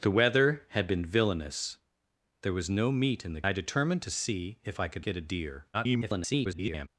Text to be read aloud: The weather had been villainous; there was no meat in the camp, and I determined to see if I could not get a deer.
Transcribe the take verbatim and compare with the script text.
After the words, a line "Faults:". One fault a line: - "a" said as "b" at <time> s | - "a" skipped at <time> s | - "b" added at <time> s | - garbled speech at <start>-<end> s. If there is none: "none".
The weather had been villainous; there was no meat in the I determined to see if I could get a deer. [garbled]
Faults:
- "camp and" skipped at 3.4 s
- "not" skipped at 5.1 s
- garbled speech at 5.7-6.9 s